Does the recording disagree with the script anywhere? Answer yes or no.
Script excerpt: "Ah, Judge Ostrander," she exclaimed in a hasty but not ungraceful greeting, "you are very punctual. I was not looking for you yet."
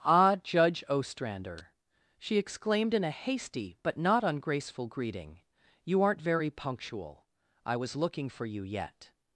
yes